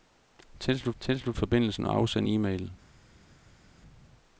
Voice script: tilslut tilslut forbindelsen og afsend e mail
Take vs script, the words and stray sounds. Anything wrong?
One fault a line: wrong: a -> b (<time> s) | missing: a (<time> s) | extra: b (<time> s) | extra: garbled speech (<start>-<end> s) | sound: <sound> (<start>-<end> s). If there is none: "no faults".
no faults